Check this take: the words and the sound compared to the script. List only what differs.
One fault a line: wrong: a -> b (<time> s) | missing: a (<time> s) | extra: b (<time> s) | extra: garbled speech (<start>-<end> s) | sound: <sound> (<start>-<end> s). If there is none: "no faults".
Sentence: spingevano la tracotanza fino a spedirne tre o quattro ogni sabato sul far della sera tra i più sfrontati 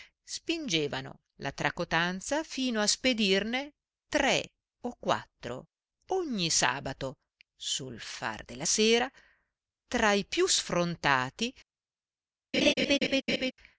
sound: laugh (12.5-13.5 s)